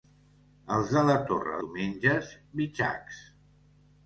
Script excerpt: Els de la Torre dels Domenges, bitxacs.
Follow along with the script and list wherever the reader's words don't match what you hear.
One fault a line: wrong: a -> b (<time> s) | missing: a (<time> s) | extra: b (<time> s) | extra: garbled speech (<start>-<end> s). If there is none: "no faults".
missing: dels (1.6 s)